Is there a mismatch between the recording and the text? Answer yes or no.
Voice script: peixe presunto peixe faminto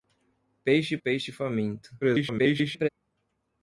yes